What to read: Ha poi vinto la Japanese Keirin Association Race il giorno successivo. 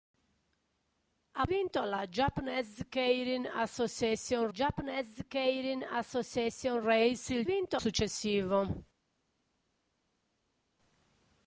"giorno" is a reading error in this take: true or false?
true